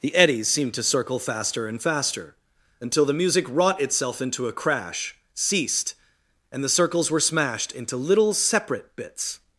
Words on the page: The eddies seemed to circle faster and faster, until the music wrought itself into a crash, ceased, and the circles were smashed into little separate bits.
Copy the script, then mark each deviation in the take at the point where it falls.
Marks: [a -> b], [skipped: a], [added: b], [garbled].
The eddies seemed to circle faster and faster, until the music wrought itself into a crash, ceased, and the circles were smashed into little separate bits.